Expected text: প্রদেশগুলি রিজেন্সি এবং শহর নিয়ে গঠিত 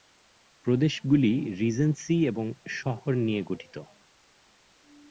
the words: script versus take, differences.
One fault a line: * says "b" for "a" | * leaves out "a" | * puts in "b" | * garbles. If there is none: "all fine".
all fine